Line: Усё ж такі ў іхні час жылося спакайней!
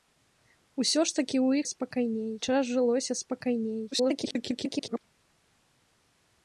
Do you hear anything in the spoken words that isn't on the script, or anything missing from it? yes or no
yes